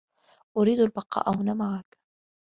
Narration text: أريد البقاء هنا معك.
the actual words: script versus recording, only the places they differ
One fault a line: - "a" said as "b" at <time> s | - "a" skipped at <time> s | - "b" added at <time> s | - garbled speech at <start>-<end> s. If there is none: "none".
none